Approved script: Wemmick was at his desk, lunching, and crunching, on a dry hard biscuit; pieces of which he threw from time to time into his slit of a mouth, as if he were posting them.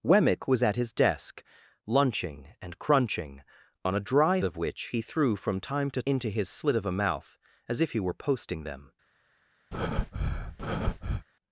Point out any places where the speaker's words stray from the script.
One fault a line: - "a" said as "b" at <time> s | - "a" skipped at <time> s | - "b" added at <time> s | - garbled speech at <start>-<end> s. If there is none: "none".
- "hard biscuit pieces" skipped at 4.4 s
- "time" skipped at 6.0 s